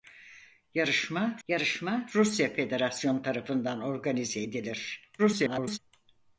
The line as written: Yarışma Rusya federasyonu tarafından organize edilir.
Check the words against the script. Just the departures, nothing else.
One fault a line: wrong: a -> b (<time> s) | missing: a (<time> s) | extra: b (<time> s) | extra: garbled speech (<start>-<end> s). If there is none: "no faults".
extra: yarışma (1.5 s)
extra: garbled speech (5.2-5.8 s)